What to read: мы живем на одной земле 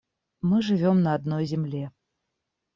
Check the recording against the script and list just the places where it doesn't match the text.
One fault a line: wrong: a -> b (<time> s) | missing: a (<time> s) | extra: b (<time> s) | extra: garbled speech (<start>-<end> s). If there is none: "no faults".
no faults